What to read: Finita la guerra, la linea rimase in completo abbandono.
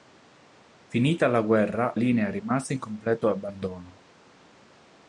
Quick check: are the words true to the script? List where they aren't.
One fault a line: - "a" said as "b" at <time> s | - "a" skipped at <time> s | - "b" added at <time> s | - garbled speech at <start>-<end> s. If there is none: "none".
- "la" skipped at 1.9 s